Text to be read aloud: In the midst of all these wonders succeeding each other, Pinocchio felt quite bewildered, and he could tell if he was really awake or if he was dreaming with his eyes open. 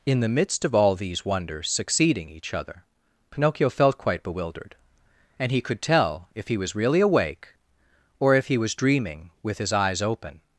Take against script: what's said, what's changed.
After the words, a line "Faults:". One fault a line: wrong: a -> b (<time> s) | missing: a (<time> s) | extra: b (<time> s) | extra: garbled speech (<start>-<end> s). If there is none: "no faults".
In the midst of all these wonders succeeding each other, Pinocchio felt quite bewildered, and he could tell if he was really awake or if he was dreaming with his eyes open.
Faults:
no faults